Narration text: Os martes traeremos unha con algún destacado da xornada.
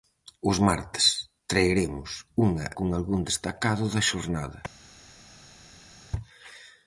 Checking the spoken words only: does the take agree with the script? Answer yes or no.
yes